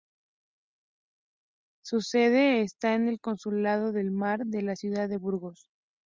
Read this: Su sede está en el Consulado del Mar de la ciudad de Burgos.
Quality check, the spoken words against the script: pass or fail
pass